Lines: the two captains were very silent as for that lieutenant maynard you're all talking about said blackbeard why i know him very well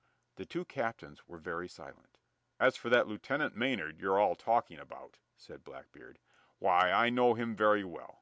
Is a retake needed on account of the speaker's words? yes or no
no